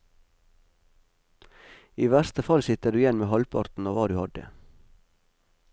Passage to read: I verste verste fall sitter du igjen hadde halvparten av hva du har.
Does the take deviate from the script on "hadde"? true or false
true